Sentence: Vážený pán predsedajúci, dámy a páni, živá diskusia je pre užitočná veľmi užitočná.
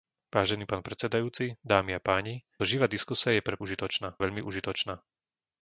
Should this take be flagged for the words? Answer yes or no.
no